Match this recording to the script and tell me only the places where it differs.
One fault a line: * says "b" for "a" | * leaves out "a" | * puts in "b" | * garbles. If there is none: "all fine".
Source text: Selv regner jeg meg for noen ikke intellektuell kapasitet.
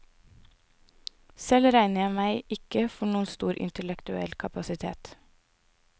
* puts in "ikke"
* says "stor" for "ikke"